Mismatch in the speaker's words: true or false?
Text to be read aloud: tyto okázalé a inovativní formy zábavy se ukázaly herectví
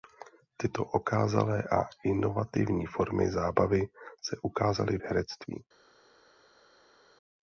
false